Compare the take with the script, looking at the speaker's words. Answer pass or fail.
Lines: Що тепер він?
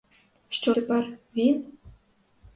pass